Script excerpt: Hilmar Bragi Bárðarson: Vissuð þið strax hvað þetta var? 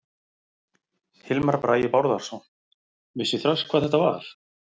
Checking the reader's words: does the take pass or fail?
fail